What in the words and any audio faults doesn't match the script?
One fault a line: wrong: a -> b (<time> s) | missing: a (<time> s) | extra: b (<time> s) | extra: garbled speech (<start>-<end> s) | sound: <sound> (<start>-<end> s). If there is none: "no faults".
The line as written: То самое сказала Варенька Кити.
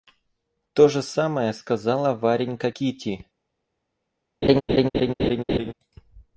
extra: же (0.9 s)
sound: laugh (4.4-5.7 s)